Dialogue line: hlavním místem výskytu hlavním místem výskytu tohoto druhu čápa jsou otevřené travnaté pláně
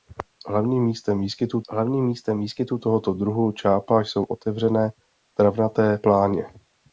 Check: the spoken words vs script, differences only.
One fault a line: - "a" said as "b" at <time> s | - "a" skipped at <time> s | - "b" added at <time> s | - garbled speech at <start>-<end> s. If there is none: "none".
none